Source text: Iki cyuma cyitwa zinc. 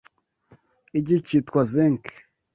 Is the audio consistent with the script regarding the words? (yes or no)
no